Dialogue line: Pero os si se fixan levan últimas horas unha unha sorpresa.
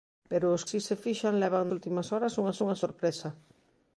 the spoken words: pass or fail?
pass